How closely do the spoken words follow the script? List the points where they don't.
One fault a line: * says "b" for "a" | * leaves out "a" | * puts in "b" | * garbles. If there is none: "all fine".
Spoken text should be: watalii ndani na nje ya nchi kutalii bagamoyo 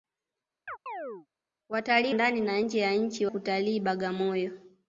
all fine